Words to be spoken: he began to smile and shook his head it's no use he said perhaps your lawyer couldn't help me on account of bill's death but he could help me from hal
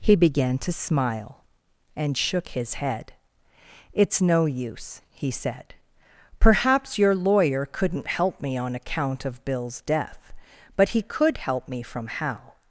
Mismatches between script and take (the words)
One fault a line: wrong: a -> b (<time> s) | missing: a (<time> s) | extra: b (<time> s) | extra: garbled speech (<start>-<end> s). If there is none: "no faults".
no faults